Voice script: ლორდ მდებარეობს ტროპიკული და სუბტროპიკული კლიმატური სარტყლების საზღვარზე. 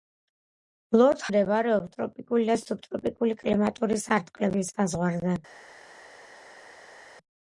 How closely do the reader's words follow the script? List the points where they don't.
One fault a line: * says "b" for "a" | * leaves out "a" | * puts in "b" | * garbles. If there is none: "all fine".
all fine